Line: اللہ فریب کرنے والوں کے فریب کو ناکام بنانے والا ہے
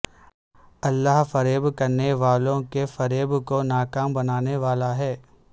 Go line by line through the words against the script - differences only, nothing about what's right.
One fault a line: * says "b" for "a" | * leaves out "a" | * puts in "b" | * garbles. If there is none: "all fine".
all fine